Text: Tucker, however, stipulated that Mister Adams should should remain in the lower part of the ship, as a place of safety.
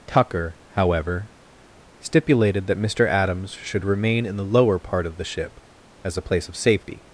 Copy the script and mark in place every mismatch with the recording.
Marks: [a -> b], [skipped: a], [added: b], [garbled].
Tucker, however, stipulated that Mister Adams should [skipped: should] remain in the lower part of the ship, as a place of safety.